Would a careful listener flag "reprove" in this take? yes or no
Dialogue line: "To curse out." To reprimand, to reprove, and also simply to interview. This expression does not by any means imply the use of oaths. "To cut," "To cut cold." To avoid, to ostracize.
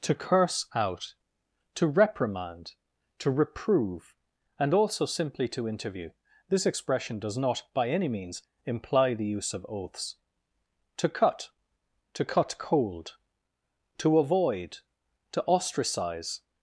no